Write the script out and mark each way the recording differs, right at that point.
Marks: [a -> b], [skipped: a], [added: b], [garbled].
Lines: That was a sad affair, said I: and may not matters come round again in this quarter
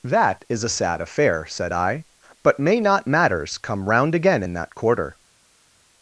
That [was -> is] a sad affair, said I: [and -> but] may not matters come round again in [this -> that] quarter